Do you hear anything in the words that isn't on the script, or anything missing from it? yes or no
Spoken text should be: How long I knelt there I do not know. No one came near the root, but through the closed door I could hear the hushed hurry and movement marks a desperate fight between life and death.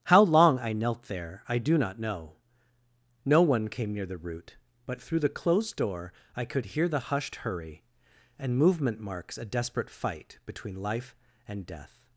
no